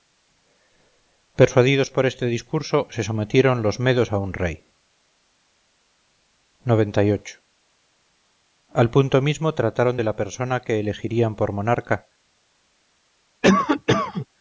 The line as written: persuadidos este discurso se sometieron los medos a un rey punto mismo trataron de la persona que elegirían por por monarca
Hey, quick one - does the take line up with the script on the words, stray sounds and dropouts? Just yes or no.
no